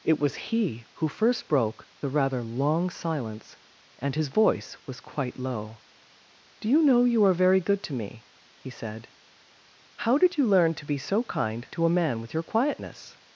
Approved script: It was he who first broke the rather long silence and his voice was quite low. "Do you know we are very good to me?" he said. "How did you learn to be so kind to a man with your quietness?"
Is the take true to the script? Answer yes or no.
no